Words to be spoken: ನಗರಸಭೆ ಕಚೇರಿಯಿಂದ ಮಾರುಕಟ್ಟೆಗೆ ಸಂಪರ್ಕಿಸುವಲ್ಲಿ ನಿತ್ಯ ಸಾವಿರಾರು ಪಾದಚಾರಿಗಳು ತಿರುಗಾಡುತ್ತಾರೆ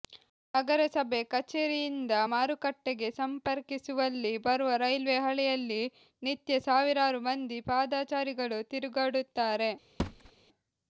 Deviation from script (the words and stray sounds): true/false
true